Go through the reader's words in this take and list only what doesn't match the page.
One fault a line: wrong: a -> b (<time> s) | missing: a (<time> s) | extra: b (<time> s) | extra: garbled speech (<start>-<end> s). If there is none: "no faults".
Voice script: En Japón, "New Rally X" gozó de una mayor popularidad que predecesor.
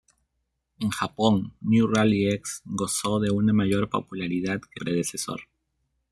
no faults